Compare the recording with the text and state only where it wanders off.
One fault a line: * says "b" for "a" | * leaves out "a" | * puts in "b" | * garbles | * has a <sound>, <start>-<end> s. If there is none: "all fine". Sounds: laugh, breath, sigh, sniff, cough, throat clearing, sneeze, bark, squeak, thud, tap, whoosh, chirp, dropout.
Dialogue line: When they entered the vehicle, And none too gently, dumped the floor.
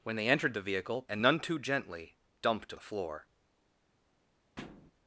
* has a thud, 4.6-4.9 s